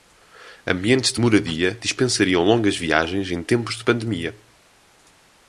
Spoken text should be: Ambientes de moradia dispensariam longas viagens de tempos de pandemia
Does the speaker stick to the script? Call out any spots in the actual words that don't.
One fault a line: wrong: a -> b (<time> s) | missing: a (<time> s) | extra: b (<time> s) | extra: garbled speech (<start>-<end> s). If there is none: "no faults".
wrong: de -> em (3.3 s)